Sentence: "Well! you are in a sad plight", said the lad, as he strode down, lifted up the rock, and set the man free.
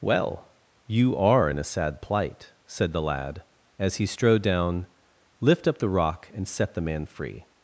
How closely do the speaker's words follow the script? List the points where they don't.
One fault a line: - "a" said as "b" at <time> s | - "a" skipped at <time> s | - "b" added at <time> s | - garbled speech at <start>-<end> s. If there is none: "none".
- "lifted" said as "lift" at 5.4 s